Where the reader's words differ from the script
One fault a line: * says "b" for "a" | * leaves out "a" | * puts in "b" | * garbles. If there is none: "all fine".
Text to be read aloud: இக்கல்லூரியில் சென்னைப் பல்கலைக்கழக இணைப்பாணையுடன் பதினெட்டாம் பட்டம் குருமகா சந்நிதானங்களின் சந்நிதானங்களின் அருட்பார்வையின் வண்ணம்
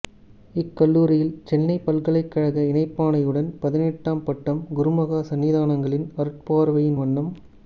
* leaves out "சந்நிதானங்களின்"